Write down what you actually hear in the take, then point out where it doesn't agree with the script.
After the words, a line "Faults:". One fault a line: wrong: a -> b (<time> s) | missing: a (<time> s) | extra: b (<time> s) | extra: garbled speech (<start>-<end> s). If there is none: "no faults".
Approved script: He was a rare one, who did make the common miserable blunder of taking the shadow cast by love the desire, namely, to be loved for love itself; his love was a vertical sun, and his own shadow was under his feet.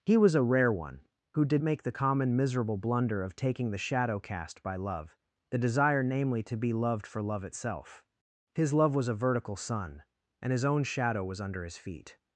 He was a rare one, who did make the common miserable blunder of taking the shadow cast by love the desire, namely, to be loved for love itself; his love was a vertical sun, and his own shadow was under his feet.
Faults:
no faults